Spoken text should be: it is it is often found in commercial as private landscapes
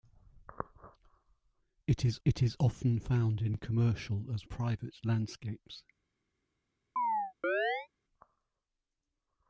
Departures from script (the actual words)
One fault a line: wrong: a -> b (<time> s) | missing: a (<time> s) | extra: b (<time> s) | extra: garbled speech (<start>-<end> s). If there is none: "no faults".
no faults